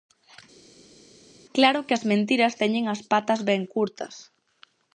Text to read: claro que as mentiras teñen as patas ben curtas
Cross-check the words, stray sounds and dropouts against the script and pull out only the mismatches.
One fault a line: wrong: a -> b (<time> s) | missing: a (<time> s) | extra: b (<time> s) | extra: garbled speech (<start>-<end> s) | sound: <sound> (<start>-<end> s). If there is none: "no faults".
no faults